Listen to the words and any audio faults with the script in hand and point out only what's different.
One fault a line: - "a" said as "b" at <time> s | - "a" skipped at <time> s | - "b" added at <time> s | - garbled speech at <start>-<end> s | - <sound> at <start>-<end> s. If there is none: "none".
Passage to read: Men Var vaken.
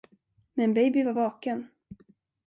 - "Baby" added at 0.7 s